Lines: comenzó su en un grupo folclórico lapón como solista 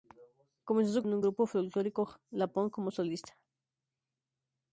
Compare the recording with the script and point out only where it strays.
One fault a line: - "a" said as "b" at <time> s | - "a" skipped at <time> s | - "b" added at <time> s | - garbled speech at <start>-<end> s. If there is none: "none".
none